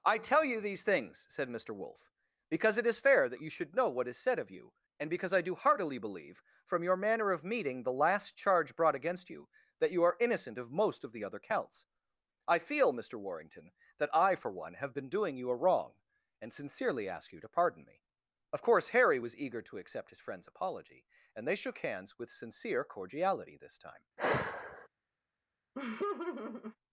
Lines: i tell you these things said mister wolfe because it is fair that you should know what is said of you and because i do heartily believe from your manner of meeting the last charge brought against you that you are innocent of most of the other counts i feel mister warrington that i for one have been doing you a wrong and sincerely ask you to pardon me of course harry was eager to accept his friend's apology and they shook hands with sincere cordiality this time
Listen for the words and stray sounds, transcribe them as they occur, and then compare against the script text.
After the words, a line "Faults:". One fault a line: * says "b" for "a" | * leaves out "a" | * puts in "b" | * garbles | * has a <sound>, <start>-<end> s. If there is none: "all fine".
i tell you these things said mister wolfe because it is fair that you should know what is said of you and because i do heartily believe from your manner of meeting the last charge brought against you that you are innocent of most of the other counts i feel mister warrington that i for one have been doing you a wrong and sincerely ask you to pardon me of course harry was eager to accept his friend's apology and they shook hands with sincere cordiality this time
Faults:
* has a sigh, 24.2-24.9 s
* has a laugh, 25.7-26.8 s